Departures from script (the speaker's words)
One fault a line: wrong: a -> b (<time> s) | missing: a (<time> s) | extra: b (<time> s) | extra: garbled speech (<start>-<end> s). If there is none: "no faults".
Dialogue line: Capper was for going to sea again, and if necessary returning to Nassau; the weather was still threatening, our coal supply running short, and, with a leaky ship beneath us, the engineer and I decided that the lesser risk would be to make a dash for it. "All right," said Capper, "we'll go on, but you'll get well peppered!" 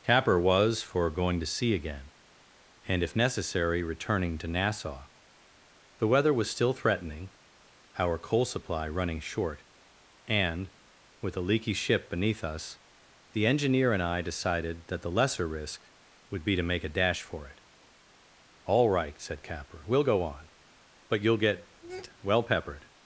no faults